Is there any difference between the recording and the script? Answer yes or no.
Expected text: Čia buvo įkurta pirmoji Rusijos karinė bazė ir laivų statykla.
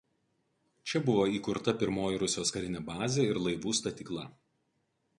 no